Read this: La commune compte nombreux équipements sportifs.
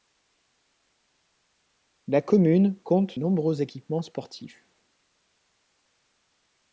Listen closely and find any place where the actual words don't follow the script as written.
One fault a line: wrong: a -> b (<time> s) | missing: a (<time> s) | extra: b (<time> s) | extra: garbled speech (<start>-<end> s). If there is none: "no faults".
no faults